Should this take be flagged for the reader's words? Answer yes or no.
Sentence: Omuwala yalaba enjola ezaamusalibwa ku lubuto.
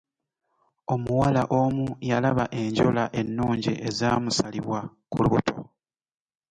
yes